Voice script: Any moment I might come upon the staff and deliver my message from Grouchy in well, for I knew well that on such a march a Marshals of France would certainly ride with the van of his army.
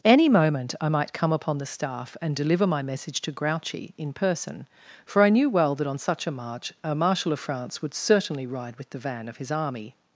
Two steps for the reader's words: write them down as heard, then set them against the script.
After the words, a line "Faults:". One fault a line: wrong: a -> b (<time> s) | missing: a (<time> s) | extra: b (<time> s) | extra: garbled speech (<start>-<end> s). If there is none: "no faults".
Any moment I might come upon the staff and deliver my message to Grouchy in person, for I knew well that on such a march a Marshal of France would certainly ride with the van of his army.
Faults:
wrong: from -> to (3.2 s)
wrong: well -> person (4.1 s)
wrong: Marshals -> Marshal (7.0 s)